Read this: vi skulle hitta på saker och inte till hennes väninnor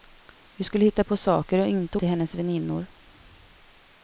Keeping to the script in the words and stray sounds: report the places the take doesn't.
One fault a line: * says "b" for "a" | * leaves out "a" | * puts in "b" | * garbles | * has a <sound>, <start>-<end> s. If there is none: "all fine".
all fine